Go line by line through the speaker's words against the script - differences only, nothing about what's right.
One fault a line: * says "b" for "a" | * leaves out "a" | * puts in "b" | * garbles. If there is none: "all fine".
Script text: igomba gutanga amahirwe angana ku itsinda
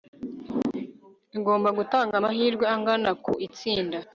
all fine